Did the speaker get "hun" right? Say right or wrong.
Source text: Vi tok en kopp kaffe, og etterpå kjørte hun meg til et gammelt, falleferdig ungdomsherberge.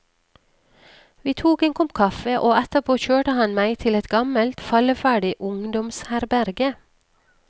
wrong